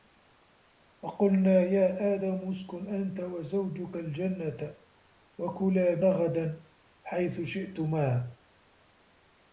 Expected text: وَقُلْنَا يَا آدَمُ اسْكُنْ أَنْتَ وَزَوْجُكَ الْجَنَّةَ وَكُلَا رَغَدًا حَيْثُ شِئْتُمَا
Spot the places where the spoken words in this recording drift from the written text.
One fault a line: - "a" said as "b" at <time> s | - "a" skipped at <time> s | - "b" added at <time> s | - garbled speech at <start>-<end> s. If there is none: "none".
none